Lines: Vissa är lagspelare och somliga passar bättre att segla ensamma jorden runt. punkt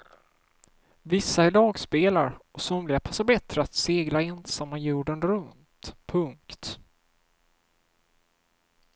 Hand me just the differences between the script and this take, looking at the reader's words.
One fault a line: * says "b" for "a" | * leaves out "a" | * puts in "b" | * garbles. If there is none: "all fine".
all fine